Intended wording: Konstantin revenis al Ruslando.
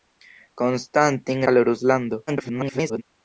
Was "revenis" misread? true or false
true